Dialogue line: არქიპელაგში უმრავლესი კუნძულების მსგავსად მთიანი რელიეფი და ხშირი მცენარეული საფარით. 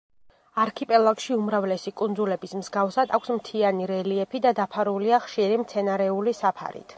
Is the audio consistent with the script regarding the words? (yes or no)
no